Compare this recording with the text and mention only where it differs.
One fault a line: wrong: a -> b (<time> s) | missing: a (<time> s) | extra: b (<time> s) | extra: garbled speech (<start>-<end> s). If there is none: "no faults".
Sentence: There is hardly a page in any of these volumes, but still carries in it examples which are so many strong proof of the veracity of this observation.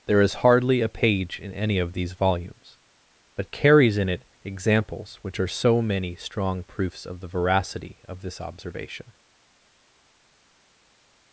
missing: still (3.5 s)
wrong: proof -> proofs (6.6 s)